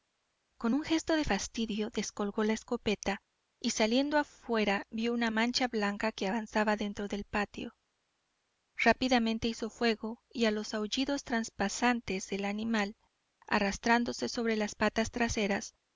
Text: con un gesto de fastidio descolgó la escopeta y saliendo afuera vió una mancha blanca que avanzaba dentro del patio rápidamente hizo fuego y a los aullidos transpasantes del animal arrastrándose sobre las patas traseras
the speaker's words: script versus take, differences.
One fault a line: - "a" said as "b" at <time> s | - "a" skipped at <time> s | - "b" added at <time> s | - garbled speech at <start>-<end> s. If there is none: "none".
none